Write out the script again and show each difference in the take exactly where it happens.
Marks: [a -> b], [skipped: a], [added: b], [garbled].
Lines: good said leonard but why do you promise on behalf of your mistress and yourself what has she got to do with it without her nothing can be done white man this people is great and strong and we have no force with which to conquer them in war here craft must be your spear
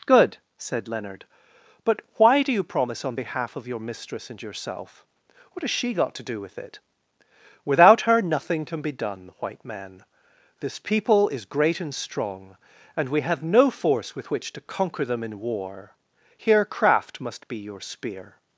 good said leonard but why do you promise on behalf of your mistress and yourself what has she got to do with it without her nothing can be done white man this people is great and strong and we have no force with which to conquer them in war here craft must be your spear